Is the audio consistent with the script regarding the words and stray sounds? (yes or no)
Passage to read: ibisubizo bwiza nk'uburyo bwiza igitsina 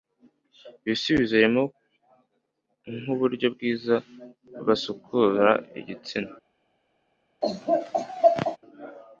no